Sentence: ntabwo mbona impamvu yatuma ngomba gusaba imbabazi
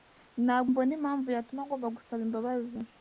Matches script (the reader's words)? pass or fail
pass